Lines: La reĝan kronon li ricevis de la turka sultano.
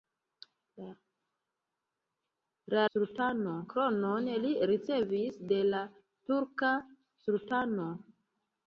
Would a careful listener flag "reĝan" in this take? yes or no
yes